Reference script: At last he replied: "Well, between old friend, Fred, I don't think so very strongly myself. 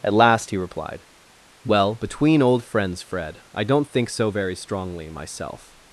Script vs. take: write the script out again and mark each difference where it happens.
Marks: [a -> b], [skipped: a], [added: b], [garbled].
At last he replied: "Well, between old [friend, -> friends] Fred, I don't think so very strongly myself.